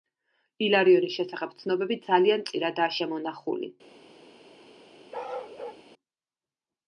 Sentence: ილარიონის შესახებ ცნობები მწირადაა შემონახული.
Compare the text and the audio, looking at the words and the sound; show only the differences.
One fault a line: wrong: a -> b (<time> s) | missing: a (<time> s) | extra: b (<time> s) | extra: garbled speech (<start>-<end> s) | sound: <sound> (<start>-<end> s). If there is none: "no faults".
extra: ძალიან (2.1 s)
sound: bark (5.1-5.8 s)